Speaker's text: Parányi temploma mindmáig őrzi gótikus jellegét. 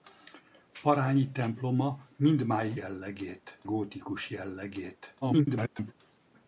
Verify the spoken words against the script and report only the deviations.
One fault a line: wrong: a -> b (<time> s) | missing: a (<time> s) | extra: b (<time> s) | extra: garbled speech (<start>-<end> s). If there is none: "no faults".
wrong: őrzi -> jellegét (2.7 s)
extra: garbled speech (5.2-5.9 s)